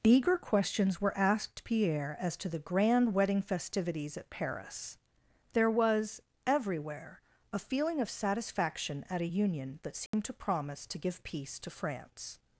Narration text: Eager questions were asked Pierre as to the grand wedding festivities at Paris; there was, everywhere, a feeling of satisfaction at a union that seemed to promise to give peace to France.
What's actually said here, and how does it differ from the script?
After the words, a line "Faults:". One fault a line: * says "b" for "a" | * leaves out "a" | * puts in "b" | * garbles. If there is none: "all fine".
Eager questions were asked Pierre as to the grand wedding festivities at Paris; there was, everywhere, a feeling of satisfaction at a union that seemed to promise to give peace to France.
Faults:
all fine